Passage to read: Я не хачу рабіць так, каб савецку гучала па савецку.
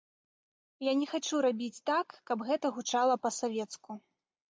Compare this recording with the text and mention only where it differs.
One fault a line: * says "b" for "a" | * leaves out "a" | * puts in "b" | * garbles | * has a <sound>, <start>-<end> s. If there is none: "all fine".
* says "гэта" for "савецку"